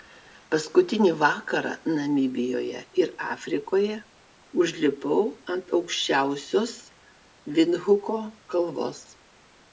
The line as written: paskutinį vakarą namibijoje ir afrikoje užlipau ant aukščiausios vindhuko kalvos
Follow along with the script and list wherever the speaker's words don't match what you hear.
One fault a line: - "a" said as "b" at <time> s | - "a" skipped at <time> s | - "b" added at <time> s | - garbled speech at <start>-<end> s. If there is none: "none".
none